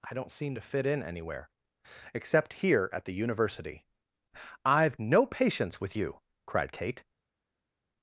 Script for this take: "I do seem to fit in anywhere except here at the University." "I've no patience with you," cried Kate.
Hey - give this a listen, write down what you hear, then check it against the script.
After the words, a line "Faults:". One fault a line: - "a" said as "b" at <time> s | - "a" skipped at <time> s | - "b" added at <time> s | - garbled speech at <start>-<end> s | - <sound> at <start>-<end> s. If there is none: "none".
"I don't seem to fit in anywhere except here at the University." "I've no patience with you," cried Kate.
Faults:
- "do" said as "don't" at 0.1 s